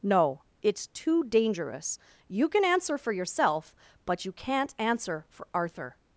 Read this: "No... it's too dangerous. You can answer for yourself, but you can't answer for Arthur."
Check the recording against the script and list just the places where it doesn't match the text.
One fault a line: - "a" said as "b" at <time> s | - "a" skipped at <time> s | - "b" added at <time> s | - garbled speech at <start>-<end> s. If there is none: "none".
none